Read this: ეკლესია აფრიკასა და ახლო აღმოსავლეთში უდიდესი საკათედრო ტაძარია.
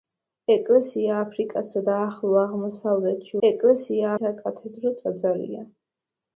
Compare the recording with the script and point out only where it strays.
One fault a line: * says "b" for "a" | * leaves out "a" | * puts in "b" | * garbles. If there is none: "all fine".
* says "ეკლესია" for "უდიდესი"